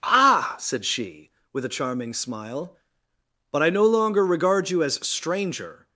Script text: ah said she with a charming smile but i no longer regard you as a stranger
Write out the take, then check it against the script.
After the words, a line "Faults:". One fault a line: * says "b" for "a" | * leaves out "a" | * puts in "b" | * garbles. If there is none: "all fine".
ah said she with a charming smile but i no longer regard you as stranger
Faults:
* leaves out "a"